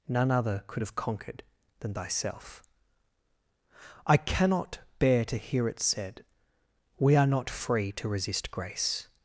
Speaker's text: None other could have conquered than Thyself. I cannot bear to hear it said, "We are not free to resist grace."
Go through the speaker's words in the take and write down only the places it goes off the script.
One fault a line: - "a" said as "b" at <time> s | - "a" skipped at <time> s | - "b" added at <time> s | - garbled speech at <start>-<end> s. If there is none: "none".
none